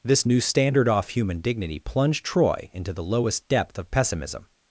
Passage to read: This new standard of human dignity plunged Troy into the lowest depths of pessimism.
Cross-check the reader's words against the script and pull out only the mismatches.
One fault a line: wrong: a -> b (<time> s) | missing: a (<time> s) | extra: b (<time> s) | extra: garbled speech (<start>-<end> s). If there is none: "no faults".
wrong: of -> off (0.9 s)
wrong: depths -> depth (3.5 s)